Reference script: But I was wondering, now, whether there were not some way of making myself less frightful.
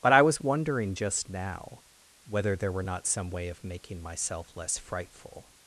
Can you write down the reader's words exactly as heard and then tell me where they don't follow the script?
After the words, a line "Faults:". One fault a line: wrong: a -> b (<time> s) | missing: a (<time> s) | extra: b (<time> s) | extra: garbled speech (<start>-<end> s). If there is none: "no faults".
But I was wondering, just now, whether there were not some way of making myself less frightful.
Faults:
extra: just (0.9 s)